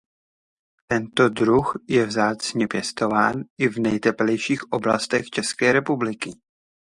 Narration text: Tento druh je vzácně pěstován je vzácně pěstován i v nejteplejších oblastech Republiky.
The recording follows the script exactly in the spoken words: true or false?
false